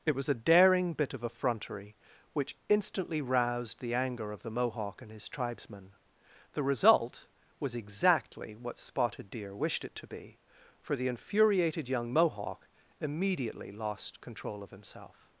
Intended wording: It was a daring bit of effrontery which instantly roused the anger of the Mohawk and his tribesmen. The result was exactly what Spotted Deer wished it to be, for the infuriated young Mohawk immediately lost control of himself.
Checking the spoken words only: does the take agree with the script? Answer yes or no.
yes